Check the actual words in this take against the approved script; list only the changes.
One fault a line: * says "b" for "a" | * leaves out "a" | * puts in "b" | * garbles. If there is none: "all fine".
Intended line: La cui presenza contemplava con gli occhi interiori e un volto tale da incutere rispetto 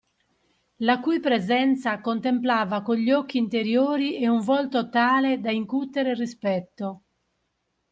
all fine